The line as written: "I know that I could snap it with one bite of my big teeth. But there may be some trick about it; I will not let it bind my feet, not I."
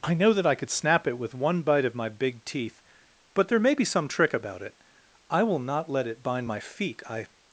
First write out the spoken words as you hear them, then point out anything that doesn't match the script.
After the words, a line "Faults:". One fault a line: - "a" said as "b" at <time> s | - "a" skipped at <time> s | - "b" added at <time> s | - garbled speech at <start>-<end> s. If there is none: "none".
"I know that I could snap it with one bite of my big teeth. But there may be some trick about it; I will not let it bind my feet, I."
Faults:
- "not" skipped at 7.0 s